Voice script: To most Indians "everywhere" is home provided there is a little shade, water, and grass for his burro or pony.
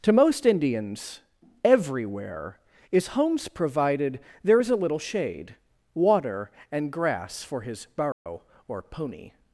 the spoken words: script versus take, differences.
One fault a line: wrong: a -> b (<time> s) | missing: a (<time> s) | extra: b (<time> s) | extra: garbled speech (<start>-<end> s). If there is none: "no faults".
wrong: home -> homes (3.1 s)